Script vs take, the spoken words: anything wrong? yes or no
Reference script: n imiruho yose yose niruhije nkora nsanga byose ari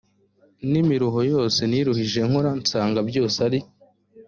yes